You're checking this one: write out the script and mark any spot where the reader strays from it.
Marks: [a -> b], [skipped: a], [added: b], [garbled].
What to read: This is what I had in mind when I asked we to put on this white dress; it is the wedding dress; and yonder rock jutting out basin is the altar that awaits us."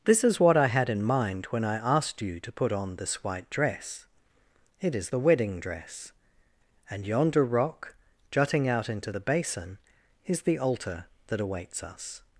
This is what I had in mind when I asked [we -> you] to put on this white dress; it is the wedding dress; and yonder rock jutting out [added: into the] basin is the altar that awaits us."